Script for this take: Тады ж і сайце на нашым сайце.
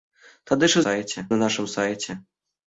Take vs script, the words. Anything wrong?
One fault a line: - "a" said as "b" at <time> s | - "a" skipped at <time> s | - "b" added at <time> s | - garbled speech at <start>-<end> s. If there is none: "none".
none